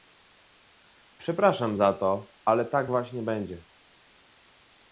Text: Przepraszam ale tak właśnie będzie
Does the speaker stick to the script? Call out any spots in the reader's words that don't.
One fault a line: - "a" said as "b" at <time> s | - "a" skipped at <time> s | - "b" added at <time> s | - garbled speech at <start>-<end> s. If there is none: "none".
- "za to" added at 1.7 s